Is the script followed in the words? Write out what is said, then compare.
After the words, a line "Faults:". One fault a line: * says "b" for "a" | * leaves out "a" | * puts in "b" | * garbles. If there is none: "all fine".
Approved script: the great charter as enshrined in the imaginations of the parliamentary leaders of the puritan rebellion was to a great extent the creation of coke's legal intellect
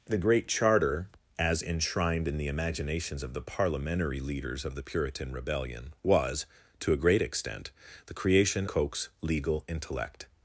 the great charter as enshrined in the imaginations of the parliamentary leaders of the puritan rebellion was to a great extent the creation coke's legal intellect
Faults:
* leaves out "of"